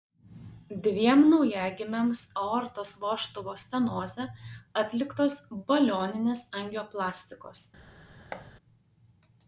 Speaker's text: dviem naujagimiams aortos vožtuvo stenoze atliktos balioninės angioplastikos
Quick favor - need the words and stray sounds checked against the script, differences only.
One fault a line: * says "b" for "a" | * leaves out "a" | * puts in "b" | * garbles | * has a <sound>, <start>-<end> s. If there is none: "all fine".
* has a thud, 8.3-8.5 s